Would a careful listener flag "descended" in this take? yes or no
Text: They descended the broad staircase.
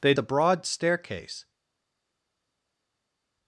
yes